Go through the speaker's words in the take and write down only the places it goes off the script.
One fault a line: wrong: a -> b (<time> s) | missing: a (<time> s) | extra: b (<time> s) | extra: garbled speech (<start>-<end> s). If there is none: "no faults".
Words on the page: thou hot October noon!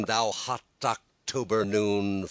no faults